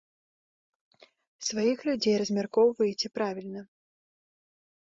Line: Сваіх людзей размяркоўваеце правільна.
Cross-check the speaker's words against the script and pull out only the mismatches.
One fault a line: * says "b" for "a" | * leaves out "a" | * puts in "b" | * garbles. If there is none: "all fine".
all fine